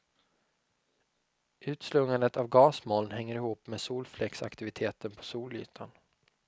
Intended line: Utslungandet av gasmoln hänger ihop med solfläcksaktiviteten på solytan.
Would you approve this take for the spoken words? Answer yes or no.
yes